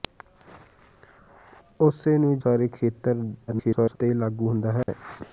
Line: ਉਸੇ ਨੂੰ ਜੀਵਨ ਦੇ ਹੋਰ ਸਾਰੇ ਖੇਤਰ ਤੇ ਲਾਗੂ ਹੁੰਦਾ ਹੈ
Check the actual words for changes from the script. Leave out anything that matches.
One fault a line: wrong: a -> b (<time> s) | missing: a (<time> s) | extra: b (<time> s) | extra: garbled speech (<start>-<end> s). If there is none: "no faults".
missing: ਜੀਵਨ ਦੇ ਹੋਰ (2.4 s)
extra: garbled speech (3.5-4.0 s)